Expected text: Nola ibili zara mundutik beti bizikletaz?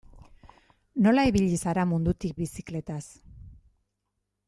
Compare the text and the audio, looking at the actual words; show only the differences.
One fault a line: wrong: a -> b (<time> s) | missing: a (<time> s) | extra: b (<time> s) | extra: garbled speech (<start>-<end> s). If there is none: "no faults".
missing: beti (2.4 s)